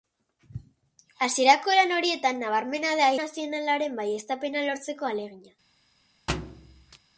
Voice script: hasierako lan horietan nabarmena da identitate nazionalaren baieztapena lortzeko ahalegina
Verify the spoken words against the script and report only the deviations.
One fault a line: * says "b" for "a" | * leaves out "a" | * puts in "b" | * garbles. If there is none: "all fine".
* leaves out "identitate"